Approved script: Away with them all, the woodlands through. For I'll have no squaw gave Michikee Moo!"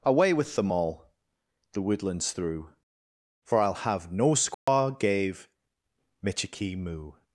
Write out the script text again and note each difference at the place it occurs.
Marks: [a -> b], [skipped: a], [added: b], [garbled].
Away with them all, the woodlands through. For I'll have no squaw gave Michikee Moo!"